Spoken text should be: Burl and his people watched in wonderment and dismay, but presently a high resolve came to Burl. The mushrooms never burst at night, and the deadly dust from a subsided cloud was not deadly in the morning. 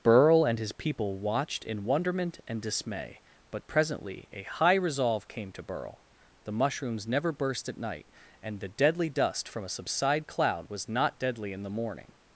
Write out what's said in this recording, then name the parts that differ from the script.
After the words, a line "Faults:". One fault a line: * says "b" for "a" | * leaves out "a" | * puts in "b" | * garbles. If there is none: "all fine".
Burl and his people watched in wonderment and dismay, but presently a high resolve came to Burl. The mushrooms never burst at night, and the deadly dust from a subside cloud was not deadly in the morning.
Faults:
* says "subside" for "subsided"